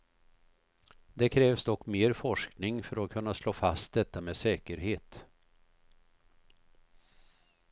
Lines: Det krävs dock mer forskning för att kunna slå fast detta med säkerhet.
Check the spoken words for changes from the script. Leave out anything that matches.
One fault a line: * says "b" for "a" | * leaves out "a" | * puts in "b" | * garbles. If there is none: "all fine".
all fine